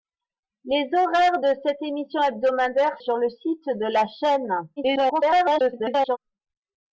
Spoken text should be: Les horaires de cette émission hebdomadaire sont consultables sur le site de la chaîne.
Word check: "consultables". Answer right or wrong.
wrong